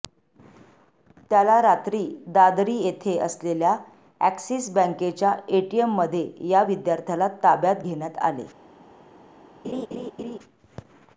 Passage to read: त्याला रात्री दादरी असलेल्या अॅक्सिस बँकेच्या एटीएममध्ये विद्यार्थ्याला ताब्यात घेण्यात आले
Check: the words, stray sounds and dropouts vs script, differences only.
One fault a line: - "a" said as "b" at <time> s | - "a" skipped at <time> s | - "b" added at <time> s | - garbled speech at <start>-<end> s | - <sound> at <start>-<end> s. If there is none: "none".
- "येथे" added at 2.8 s
- "या" added at 6.5 s
- laugh at 9.6-10.4 s